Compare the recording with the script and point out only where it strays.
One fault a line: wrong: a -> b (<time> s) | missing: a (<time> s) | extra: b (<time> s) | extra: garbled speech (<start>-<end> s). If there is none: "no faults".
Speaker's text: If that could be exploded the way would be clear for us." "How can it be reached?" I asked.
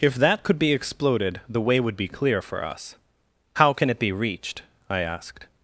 no faults